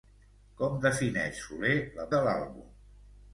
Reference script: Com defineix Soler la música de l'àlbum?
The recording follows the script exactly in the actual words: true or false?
false